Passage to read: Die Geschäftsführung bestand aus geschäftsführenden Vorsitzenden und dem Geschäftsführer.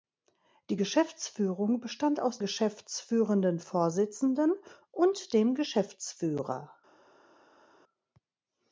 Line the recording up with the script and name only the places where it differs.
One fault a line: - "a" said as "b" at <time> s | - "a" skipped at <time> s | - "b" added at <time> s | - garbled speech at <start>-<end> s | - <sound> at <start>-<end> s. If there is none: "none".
none